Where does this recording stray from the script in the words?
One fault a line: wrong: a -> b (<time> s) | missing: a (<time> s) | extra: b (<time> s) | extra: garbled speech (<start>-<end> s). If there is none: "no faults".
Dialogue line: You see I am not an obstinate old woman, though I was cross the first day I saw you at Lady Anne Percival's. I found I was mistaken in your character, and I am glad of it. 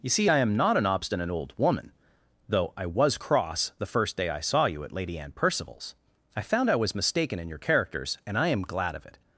wrong: character -> characters (7.6 s)